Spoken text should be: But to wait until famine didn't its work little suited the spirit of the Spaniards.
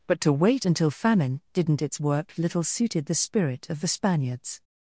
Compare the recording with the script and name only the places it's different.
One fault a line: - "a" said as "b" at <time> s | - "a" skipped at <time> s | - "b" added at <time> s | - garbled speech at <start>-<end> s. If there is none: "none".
none